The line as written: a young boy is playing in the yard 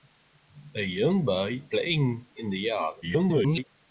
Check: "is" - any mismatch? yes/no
yes